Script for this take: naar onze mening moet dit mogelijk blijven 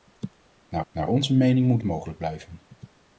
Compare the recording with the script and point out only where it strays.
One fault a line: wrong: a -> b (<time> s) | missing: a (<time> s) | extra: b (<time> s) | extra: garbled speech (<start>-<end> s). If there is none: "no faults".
extra: naar (0.9 s)
missing: dit (1.8 s)